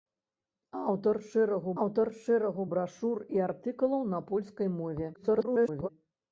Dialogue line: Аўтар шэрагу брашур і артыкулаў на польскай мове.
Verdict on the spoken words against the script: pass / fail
fail